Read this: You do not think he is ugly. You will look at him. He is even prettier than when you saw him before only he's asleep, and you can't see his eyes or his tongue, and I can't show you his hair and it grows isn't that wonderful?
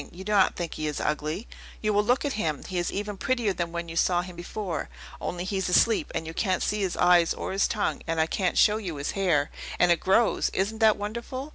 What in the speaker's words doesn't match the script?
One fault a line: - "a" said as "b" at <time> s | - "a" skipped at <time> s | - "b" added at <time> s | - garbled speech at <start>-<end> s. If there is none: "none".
none